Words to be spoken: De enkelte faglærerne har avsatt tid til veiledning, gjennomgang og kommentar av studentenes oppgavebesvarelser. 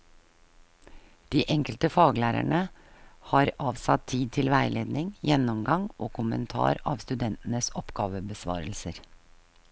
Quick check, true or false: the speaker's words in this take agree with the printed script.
true